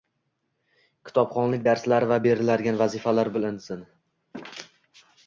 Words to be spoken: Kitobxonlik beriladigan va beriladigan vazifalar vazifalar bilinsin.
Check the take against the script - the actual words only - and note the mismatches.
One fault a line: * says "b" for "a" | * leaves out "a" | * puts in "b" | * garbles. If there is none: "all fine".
* says "darslari" for "beriladigan"
* leaves out "vazifalar"